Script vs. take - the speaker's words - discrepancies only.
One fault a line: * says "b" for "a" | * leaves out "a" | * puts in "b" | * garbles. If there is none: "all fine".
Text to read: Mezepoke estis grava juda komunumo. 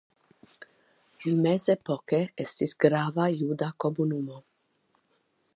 all fine